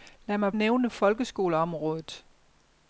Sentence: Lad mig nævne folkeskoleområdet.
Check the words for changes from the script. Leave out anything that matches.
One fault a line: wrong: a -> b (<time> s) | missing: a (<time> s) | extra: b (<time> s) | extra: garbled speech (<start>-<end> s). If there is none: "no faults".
no faults